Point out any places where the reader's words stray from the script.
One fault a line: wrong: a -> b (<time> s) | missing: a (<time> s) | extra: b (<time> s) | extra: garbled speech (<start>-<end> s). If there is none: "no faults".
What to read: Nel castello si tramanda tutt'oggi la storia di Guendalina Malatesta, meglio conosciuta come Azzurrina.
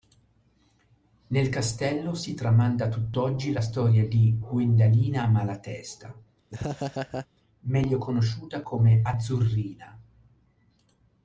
no faults